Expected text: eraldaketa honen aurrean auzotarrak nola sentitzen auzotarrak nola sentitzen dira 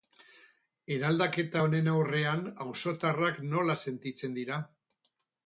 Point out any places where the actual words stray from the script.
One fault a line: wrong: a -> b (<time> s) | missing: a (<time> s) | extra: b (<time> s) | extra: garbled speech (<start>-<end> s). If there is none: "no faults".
missing: auzotarrak nola sentitzen (4.4 s)